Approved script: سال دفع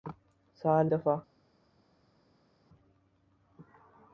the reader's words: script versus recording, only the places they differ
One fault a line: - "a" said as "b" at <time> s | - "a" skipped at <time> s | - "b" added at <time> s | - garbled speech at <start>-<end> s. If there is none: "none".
none